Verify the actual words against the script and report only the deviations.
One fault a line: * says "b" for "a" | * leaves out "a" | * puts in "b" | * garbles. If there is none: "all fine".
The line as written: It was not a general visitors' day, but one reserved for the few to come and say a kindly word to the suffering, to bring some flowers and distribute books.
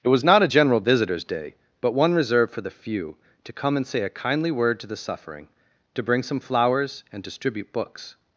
all fine